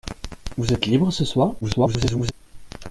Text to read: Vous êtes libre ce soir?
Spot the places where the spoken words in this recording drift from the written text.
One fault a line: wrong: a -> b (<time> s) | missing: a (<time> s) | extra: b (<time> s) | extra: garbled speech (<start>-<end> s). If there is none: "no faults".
extra: garbled speech (1.6-2.3 s)